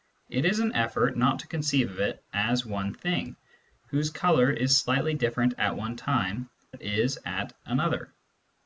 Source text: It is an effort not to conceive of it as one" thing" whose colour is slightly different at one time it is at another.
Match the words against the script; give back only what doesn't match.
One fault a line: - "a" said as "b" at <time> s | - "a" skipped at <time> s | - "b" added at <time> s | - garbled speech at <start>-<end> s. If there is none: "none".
none